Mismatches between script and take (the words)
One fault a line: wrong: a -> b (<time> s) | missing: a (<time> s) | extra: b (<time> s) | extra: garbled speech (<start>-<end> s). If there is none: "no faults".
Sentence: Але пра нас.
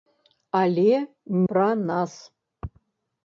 no faults